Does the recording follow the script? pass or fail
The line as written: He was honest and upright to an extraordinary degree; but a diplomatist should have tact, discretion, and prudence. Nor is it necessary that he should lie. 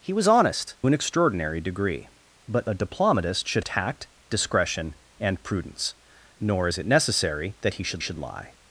fail